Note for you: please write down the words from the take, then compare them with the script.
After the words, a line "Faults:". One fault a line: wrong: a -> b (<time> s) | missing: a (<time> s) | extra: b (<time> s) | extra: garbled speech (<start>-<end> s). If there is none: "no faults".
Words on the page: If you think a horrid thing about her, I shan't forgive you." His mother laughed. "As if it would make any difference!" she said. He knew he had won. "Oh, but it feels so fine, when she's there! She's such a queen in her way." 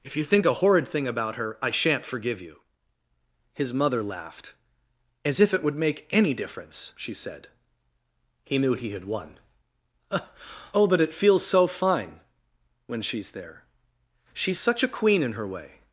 If you think a horrid thing about her, I shan't forgive you." His mother laughed. "As if it would make any difference!" she said. He knew he had won. "Oh, but it feels so fine, when she's there! She's such a queen in her way."
Faults:
no faults